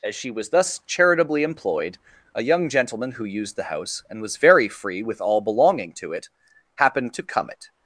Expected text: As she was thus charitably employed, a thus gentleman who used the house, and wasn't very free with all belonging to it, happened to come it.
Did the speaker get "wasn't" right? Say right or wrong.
wrong